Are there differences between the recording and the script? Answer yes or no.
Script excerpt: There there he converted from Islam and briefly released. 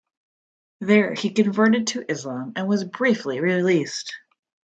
yes